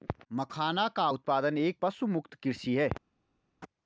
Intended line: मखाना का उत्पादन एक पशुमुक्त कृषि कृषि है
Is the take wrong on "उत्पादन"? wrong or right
right